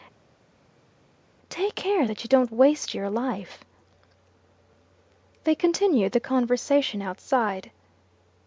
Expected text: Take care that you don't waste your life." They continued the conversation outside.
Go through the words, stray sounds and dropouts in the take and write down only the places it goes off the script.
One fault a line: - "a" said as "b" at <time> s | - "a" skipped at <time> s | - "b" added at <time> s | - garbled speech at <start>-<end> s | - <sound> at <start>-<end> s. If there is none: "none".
none